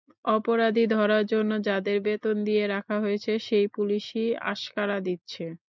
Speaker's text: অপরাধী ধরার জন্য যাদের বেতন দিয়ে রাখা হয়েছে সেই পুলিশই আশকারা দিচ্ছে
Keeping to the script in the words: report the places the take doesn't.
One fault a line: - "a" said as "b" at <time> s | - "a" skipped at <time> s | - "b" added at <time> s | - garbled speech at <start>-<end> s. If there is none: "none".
none